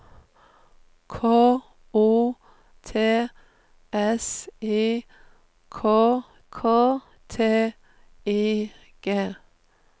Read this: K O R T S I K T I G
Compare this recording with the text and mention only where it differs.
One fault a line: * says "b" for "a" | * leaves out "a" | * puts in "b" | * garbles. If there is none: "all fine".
* leaves out "R"
* puts in "K"